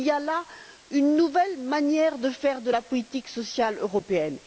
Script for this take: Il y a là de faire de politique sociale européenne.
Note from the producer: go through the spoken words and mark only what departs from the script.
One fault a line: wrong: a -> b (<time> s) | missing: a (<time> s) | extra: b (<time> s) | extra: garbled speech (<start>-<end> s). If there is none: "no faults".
extra: une nouvelle manière (0.9 s)
extra: la (2.7 s)